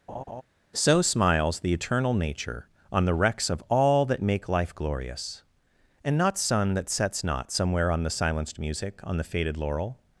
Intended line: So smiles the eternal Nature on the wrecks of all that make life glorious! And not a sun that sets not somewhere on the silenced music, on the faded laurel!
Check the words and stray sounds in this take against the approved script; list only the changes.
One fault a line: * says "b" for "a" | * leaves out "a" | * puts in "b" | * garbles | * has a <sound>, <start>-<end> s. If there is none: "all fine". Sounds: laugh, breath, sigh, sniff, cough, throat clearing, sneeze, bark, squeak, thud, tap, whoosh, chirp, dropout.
* has a laugh, 0.1-0.4 s
* leaves out "a"